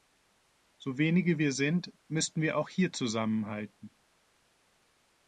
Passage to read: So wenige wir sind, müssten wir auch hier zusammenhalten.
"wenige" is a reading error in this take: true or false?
false